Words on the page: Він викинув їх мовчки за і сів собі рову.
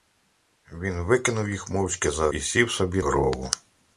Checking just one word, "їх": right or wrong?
right